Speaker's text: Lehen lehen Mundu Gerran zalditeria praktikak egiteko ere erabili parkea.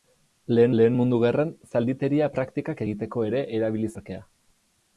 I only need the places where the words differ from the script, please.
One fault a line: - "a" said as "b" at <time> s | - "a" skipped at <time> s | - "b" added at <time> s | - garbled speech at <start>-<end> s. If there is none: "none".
none